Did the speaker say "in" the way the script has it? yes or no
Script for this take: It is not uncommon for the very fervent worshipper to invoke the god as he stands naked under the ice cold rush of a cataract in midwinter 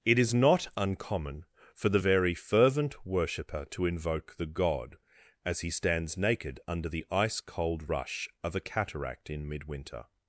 yes